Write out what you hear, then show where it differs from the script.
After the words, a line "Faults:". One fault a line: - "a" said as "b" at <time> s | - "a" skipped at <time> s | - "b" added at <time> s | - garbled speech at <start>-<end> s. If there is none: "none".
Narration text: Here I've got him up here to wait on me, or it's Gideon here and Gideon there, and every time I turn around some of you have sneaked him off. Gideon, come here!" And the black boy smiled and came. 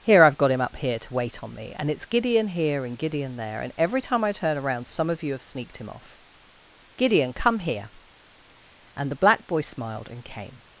Here I've got him up here to wait on me, and it's Gideon here and Gideon there, and every time I turn around some of you have sneaked him off. Gideon, come here!" And the black boy smiled and came.
Faults:
- "or" said as "and" at 1.8 s